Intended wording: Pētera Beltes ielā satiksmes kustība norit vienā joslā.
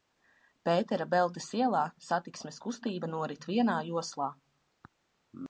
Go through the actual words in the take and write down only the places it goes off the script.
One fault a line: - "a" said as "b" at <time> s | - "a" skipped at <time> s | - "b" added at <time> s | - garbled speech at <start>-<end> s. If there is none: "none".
none